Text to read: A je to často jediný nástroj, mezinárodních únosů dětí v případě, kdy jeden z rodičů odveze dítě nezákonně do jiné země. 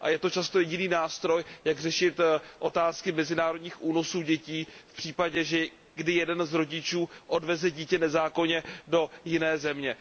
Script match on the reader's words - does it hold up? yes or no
no